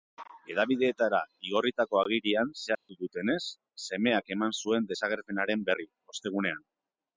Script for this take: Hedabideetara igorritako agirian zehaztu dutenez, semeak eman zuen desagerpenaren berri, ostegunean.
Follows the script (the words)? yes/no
yes